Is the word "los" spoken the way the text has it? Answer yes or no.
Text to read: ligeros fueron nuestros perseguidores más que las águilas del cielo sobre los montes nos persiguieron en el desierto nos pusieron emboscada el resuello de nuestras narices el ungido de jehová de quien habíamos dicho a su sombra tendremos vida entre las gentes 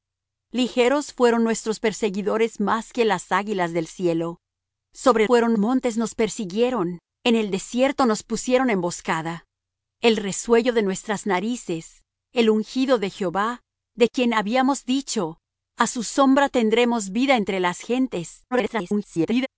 no